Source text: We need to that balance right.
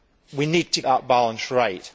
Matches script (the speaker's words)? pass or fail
pass